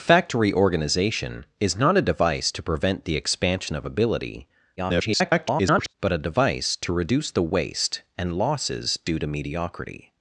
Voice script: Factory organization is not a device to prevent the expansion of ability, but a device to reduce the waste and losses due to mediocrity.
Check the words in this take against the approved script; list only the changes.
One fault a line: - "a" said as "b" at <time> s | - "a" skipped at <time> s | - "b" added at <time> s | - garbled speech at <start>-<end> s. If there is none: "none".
- garbled speech at 4.8-5.9 s